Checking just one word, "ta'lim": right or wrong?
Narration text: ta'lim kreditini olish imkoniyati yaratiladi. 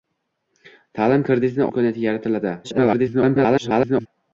right